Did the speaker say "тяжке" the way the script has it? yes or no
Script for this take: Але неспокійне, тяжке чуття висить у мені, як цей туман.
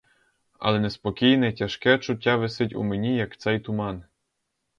yes